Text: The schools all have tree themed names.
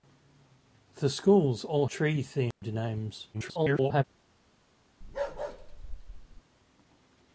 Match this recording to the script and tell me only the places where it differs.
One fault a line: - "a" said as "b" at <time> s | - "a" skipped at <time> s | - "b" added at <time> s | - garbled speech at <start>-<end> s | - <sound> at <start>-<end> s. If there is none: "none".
- "have" skipped at 1.9 s
- dropout at 2.5-2.6 s
- garbled speech at 3.3-4.0 s
- bark at 5.0-6.4 s